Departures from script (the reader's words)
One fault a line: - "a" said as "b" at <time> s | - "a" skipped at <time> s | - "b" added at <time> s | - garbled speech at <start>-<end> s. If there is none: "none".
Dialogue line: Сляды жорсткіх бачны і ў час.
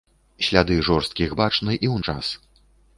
none